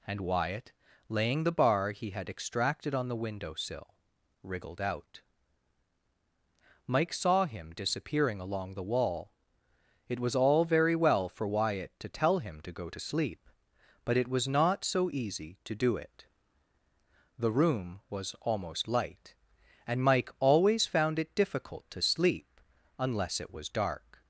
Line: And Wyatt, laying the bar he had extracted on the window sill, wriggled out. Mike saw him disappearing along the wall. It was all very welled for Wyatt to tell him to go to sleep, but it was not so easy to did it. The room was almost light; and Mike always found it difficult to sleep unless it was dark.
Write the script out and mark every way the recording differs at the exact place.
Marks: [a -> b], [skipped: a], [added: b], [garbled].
And Wyatt, laying the bar he had extracted on the window sill, wriggled out. Mike saw him disappearing along the wall. It was all very [welled -> well] for Wyatt to tell him to go to sleep, but it was not so easy to [did -> do] it. The room was almost light; and Mike always found it difficult to sleep unless it was dark.